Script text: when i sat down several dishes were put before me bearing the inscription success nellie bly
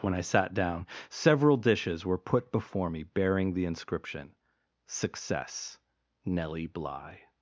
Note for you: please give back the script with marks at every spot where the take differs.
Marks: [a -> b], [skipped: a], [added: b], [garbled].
when i sat down several dishes were put before me bearing the inscription success nellie bly